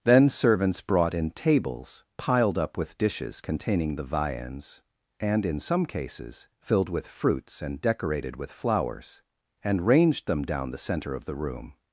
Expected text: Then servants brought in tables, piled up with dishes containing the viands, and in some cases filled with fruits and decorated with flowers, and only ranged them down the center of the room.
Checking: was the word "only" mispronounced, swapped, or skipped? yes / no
yes